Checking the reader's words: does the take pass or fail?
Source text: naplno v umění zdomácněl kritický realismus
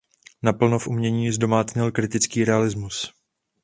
pass